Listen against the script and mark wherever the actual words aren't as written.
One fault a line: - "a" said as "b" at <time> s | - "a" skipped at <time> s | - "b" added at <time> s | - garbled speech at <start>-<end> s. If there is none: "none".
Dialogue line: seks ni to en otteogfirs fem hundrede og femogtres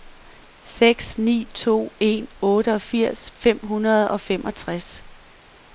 none